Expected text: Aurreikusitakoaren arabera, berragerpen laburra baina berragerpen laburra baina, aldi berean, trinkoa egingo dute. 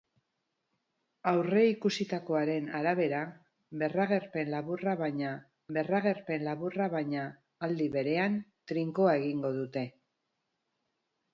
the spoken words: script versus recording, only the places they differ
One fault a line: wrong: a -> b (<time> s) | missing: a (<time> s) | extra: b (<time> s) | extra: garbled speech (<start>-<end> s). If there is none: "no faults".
no faults